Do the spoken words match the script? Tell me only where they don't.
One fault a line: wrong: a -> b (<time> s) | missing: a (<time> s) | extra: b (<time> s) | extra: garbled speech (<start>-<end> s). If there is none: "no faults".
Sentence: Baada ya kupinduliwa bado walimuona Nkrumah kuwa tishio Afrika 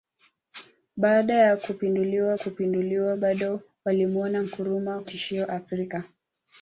extra: kupinduliwa (2.3 s)
missing: kuwa (5.0 s)